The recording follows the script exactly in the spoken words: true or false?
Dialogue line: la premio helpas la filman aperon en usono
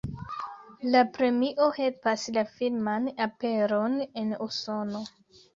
true